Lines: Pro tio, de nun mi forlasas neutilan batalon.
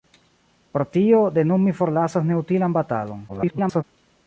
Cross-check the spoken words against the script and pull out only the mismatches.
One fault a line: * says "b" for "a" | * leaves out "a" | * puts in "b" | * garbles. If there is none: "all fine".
* garbles